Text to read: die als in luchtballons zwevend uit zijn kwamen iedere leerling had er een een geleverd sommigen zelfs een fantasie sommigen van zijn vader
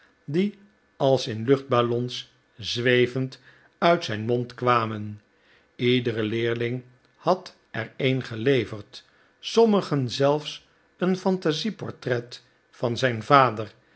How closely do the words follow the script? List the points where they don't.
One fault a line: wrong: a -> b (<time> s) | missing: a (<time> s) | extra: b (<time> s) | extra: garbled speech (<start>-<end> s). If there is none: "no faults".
extra: mond (4.2 s)
missing: een (8.2 s)
wrong: sommigen -> portret (11.7 s)